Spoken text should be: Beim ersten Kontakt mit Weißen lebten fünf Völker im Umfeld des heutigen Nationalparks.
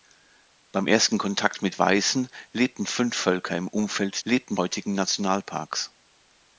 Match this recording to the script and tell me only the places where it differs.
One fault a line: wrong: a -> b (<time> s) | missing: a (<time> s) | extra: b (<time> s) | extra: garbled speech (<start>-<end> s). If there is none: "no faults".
wrong: des -> lebten (4.3 s)